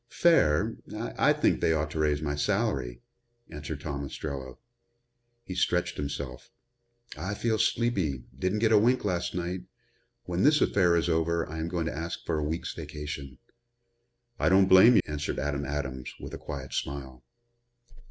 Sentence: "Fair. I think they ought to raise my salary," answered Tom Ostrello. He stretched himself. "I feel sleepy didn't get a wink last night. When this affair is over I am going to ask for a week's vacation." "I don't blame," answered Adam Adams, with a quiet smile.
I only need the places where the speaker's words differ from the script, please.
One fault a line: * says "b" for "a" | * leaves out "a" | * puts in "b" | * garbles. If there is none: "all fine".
all fine